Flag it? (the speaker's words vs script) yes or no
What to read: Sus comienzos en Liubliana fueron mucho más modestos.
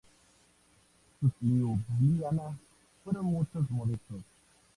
yes